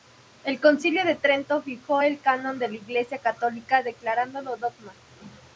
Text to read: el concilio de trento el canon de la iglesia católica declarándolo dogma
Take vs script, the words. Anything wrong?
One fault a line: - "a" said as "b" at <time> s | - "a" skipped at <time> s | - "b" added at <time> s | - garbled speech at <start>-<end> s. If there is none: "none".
- "fijó" added at 1.6 s